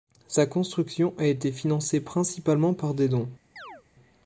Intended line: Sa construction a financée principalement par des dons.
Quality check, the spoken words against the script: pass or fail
fail